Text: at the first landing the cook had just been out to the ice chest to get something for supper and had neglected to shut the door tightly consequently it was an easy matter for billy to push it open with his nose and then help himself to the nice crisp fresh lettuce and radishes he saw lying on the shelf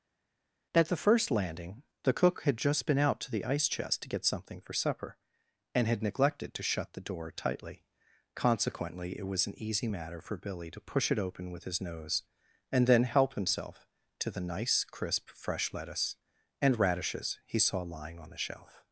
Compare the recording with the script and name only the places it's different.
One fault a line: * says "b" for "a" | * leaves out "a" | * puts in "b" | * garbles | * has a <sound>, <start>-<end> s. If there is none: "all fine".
all fine